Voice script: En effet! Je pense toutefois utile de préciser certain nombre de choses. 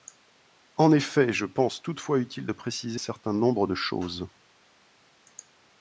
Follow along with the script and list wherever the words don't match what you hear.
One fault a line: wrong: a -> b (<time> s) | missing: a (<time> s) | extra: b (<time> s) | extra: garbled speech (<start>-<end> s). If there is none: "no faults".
no faults